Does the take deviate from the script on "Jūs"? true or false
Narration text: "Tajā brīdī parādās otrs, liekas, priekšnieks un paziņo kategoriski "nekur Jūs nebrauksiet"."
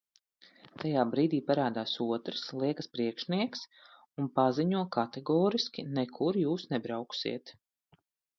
false